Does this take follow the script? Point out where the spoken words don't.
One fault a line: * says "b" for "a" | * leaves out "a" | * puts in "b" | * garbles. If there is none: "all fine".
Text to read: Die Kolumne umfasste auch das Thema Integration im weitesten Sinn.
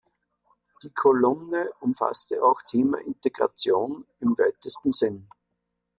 * leaves out "das"